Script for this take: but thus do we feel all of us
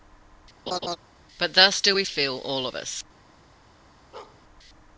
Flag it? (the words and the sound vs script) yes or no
yes